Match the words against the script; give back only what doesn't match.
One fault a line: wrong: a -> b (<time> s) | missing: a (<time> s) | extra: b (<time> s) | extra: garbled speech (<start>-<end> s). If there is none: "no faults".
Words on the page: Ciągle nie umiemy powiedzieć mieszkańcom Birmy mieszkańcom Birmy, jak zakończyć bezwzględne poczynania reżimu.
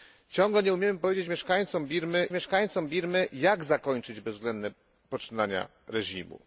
no faults